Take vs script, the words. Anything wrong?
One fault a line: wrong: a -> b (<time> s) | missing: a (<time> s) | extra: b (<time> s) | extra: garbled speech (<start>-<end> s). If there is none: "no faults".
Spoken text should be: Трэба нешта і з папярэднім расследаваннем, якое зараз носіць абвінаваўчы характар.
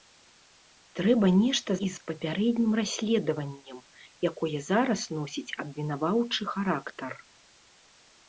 no faults